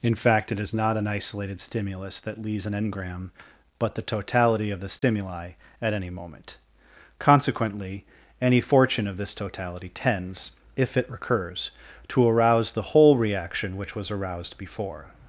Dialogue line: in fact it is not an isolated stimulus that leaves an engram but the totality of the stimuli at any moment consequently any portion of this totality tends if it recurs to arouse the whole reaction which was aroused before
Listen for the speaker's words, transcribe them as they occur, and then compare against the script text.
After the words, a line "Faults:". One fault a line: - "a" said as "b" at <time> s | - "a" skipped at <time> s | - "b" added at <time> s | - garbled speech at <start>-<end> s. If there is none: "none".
in fact it is not an isolated stimulus that leaves an engram but the totality of the stimuli at any moment consequently any fortune of this totality tends if it recurs to arouse the whole reaction which was aroused before
Faults:
- "portion" said as "fortune" at 8.6 s